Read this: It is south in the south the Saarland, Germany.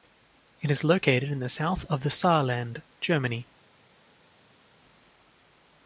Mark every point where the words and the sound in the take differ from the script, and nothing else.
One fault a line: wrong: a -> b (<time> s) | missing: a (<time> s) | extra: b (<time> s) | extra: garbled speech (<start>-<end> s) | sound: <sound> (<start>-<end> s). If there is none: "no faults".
wrong: south -> located (0.8 s)
extra: of (1.9 s)